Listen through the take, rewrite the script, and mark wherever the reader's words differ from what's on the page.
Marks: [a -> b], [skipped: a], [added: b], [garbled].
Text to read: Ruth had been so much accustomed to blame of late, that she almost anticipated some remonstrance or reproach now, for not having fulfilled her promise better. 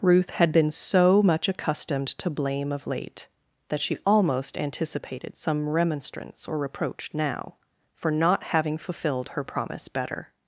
Ruth had been so much accustomed to blame of late, that she almost anticipated some remonstrance or reproach now, for not having fulfilled her promise better.